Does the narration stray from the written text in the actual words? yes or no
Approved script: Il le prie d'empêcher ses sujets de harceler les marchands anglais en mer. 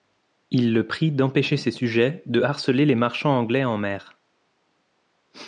no